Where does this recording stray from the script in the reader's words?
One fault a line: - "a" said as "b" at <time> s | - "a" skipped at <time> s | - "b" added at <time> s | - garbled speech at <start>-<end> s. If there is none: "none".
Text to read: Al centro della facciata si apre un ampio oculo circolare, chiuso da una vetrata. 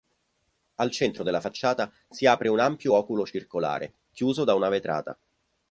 none